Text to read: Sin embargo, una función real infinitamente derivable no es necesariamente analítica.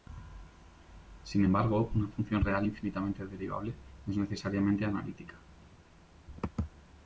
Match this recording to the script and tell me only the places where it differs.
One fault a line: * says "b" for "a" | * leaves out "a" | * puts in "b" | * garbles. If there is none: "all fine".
all fine